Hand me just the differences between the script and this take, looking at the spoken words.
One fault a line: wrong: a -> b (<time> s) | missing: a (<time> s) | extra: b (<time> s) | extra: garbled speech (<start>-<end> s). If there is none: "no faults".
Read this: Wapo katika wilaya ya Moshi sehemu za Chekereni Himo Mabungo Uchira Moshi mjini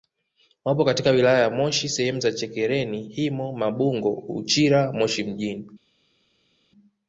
no faults